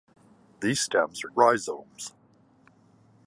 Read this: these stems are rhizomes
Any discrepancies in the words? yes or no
no